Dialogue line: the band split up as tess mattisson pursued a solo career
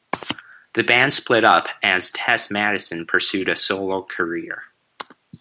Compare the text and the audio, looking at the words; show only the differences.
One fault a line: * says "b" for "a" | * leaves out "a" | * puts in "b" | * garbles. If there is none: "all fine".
all fine